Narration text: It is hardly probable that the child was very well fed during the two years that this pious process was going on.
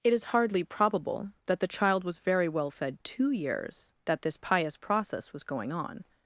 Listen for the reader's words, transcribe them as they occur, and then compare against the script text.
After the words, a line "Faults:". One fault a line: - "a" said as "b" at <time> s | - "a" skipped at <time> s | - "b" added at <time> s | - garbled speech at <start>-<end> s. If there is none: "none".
It is hardly probable that the child was very well fed two years that this pious process was going on.
Faults:
- "during the" skipped at 3.0 s